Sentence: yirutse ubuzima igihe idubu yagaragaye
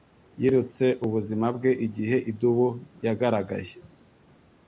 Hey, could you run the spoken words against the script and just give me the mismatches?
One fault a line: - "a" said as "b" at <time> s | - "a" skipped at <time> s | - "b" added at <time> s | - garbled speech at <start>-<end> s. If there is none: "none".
- "bwe" added at 1.6 s